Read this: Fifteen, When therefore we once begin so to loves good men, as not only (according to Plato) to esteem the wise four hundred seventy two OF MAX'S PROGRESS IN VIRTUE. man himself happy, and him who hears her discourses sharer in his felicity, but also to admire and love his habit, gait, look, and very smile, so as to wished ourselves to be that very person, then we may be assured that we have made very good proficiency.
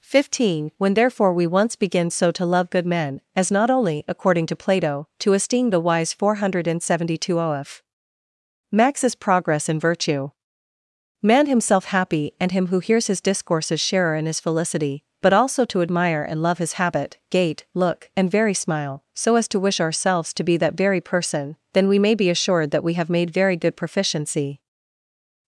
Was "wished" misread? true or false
true